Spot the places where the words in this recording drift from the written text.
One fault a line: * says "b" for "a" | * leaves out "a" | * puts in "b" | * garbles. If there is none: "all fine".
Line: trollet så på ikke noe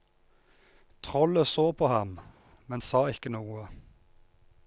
* puts in "ham men sa"